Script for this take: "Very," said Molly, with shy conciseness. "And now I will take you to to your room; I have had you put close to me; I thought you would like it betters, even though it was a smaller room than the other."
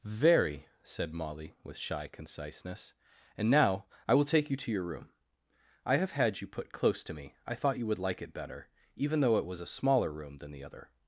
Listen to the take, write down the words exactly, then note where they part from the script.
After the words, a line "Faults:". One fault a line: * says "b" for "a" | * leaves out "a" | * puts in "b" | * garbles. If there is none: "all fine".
"Very," said Molly, with shy conciseness. "And now I will take you to your room; I have had you put close to me; I thought you would like it better, even though it was a smaller room than the other."
Faults:
* leaves out "to"
* says "better" for "betters"